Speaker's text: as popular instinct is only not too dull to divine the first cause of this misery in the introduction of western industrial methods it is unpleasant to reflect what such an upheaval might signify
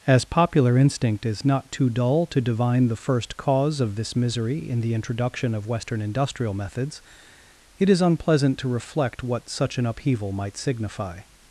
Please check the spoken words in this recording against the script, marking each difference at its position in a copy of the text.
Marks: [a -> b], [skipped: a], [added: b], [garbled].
as popular instinct is [skipped: only] not too dull to divine the first cause of this misery in the introduction of western industrial methods it is unpleasant to reflect what such an upheaval might signify